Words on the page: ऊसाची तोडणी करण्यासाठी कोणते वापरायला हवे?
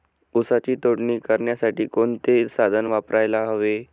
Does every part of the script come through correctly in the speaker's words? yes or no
no